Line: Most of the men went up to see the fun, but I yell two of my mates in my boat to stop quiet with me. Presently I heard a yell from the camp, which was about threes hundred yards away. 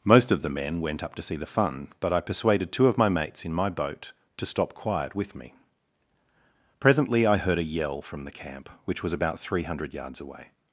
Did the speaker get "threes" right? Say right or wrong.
wrong